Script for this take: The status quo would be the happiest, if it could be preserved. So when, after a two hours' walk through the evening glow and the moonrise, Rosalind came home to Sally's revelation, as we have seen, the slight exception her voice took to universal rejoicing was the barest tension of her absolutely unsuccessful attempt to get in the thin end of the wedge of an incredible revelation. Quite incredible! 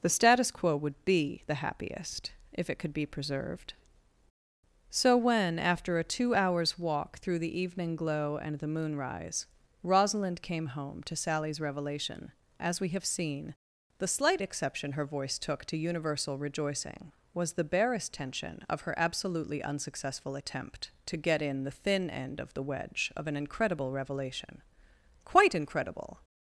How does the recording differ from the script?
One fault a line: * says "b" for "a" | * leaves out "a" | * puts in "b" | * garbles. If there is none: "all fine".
all fine